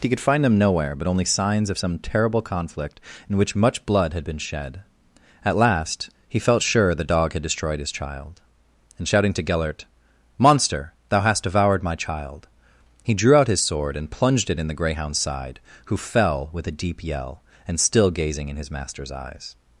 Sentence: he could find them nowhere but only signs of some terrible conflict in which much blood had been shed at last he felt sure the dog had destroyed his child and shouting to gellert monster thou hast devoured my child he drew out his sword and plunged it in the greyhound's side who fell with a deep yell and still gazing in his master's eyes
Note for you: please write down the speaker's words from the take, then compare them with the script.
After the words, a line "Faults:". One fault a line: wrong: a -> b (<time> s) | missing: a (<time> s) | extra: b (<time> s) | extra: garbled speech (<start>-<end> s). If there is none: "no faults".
he could find them nowhere but only signs of some terrible conflict in which much blood had been shed at last he felt sure the dog had destroyed his child and shouting to gellert monster thou hast devoured my child he drew out his sword and plunged it in the greyhound's side who fell with a deep yell and still gazing in his master's eyes
Faults:
no faults